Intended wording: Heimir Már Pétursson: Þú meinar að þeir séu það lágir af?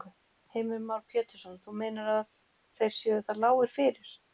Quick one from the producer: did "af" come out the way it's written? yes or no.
no